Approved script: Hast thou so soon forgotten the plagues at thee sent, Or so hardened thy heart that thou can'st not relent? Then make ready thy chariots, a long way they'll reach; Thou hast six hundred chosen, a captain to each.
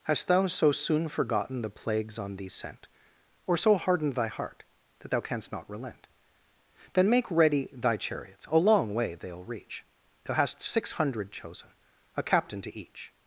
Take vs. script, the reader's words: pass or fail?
fail